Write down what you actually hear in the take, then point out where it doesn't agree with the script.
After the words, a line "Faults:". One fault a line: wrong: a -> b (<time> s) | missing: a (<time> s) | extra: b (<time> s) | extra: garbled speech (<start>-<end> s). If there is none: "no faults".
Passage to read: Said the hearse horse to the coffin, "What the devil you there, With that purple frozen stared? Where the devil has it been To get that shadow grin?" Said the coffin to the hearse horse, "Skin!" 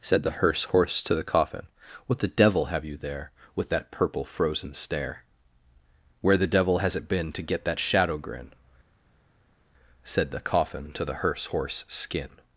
Said the hearse horse to the coffin, "What the devil have you there, With that purple frozen stare? Where the devil has it been To get that shadow grin?" Said the coffin to the hearse horse, "Skin!"
Faults:
extra: have (2.6 s)
wrong: stared -> stare (4.7 s)